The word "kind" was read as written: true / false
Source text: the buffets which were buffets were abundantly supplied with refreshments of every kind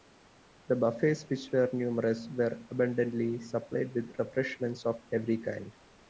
true